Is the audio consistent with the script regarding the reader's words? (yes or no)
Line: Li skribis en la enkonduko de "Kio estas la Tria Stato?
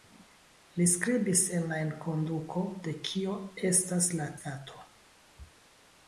no